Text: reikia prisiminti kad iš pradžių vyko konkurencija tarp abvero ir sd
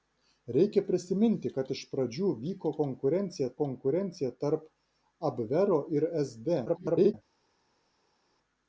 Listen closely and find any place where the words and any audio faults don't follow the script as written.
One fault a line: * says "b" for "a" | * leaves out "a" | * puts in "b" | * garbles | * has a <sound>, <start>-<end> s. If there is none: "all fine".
* puts in "konkurencija"
* garbles